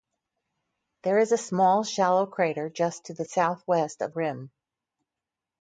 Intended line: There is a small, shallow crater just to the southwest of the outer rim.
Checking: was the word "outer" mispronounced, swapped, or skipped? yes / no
yes